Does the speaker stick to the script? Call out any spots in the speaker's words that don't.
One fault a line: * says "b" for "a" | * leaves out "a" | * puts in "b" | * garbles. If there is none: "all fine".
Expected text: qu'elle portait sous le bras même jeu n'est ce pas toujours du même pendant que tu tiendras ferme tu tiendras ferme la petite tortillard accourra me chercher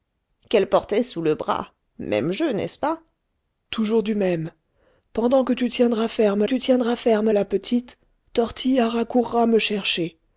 all fine